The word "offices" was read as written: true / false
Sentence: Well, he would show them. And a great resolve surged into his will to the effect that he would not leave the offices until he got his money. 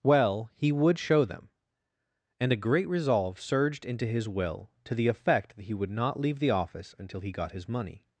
false